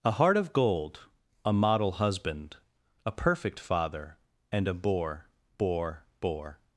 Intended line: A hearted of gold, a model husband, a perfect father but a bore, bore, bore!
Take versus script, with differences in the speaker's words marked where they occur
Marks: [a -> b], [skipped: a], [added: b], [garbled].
A [hearted -> heart] of gold, a model husband, a perfect father [but -> and] a bore, bore, bore!